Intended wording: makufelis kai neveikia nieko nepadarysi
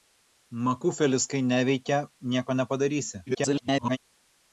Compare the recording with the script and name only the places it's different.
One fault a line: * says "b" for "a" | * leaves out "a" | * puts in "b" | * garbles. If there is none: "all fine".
* garbles